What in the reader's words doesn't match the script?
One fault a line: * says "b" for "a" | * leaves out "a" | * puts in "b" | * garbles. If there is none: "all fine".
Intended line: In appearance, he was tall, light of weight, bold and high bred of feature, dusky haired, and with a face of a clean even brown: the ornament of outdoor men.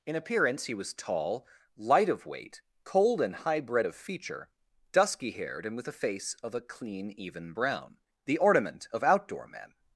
* says "cold" for "bold"